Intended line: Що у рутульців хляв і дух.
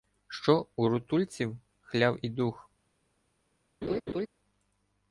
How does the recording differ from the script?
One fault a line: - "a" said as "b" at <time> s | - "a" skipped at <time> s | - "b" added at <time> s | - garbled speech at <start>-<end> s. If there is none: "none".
none